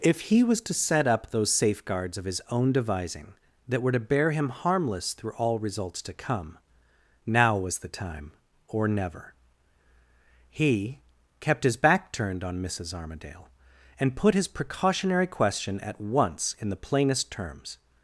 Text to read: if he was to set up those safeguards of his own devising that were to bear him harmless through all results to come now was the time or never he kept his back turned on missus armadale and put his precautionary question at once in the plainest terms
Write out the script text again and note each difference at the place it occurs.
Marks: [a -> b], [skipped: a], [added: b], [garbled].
if he was to set up those safeguards of his own devising that were to bear him harmless through all results to come now was the time or never he kept his back turned on missus armadale and put his precautionary question at once in the plainest terms